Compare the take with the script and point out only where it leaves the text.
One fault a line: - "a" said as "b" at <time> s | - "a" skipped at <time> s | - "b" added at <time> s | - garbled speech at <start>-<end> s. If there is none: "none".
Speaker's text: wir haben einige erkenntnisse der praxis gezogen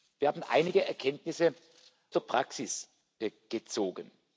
none